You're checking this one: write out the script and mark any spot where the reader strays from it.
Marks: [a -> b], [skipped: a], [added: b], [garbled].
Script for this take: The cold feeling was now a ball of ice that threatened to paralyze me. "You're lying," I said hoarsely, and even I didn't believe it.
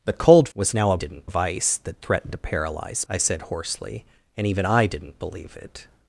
The cold [skipped: feeling] was now a [ball -> didn't] of ice that threatened to paralyze [skipped: me. "You're lying,"] I said hoarsely, and even I didn't believe it.